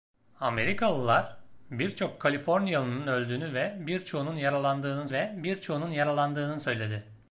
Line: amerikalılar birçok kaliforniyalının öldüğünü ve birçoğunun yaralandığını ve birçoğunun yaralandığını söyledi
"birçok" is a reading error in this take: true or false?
false